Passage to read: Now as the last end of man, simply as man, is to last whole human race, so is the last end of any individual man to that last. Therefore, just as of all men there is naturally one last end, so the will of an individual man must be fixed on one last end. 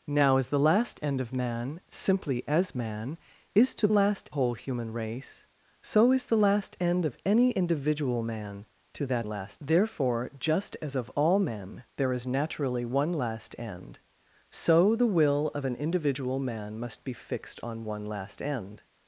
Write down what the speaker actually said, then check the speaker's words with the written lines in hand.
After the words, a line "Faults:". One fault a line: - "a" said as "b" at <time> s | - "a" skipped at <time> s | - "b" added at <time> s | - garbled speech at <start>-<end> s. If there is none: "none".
Now as the last end of man, simply as man, is to last whole human race, so is the last end of any individual man to that last. Therefore, just as of all men there is naturally one last end, so the will of an individual man must be fixed on one last end.
Faults:
none